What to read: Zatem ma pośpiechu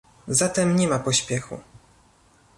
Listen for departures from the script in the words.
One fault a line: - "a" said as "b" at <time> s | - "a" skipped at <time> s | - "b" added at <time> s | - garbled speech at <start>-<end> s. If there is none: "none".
- "nie" added at 0.8 s